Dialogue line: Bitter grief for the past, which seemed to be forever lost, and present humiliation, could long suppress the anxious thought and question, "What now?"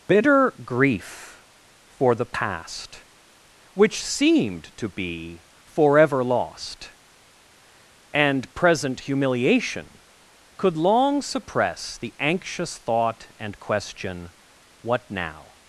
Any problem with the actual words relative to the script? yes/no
no